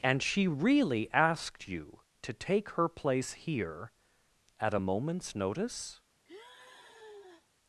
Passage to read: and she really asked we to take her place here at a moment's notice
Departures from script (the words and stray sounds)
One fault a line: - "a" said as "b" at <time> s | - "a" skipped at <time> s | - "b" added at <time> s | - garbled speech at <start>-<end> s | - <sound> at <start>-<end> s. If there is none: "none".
- "we" said as "you" at 1.7 s
- sigh at 6.2-7.5 s